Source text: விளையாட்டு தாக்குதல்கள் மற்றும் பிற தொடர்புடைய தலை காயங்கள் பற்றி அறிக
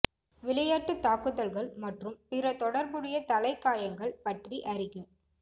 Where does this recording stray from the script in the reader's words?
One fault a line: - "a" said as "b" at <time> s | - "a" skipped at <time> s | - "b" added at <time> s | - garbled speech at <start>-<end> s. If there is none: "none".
none